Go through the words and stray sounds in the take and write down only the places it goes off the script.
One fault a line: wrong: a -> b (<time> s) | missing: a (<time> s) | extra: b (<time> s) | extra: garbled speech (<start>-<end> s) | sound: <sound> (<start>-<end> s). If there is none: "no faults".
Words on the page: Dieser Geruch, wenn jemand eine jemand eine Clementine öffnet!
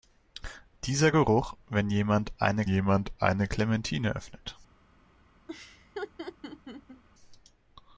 sound: laugh (5.5-7.0 s)